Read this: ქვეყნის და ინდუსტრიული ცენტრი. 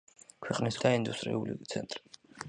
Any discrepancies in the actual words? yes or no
no